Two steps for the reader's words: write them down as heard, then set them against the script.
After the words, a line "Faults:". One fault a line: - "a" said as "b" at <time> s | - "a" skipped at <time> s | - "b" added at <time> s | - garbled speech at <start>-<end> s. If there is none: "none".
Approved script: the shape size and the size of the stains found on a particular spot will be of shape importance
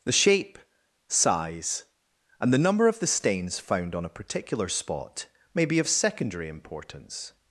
the shape size and the number of the stains found on a particular spot may be of secondary importance
Faults:
- "size" said as "number" at 2.6 s
- "will" said as "may" at 5.5 s
- "shape" said as "secondary" at 5.9 s